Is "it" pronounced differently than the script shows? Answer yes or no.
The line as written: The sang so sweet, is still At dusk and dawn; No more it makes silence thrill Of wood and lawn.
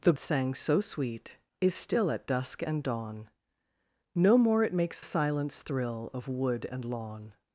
no